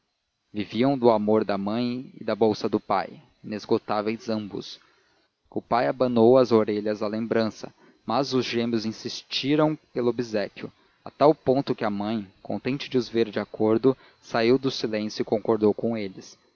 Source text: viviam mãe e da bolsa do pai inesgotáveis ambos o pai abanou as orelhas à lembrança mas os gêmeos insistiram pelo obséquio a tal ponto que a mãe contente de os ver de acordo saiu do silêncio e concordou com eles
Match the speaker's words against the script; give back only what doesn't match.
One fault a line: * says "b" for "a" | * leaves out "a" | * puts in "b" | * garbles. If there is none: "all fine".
* puts in "do amor da"